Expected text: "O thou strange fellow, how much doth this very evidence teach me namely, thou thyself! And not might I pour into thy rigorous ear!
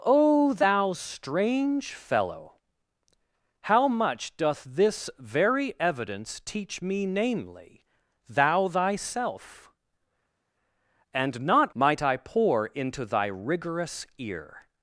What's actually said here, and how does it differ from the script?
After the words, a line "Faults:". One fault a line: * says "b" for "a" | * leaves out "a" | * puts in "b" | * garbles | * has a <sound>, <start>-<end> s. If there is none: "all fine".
"O thou strange fellow, how much doth this very evidence teach me namely, thou thyself! And not might I pour into thy rigorous ear!
Faults:
all fine